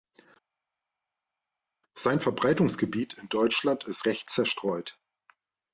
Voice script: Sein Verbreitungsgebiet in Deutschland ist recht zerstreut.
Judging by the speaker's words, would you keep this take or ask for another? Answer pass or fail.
pass